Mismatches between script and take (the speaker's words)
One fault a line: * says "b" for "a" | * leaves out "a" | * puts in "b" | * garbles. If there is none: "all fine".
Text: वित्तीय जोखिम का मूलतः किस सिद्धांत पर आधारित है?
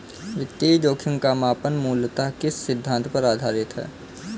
* puts in "मापन"